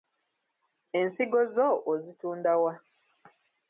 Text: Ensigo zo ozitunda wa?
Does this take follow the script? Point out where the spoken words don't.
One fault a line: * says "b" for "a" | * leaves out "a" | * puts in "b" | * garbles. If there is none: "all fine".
all fine